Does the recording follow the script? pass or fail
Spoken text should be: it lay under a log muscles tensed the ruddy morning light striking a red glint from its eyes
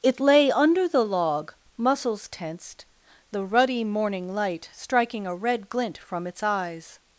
fail